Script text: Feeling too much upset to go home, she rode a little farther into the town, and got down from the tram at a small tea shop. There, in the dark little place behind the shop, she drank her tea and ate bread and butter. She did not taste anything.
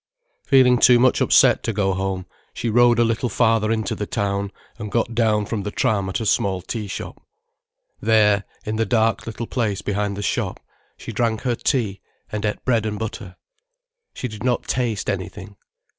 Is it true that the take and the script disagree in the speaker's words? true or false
false